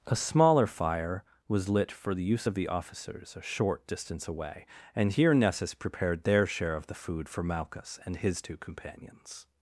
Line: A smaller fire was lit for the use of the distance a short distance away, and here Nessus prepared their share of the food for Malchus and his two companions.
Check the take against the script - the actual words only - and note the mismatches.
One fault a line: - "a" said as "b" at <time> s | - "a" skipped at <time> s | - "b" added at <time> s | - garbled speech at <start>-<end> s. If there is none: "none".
- "distance" said as "officers" at 2.7 s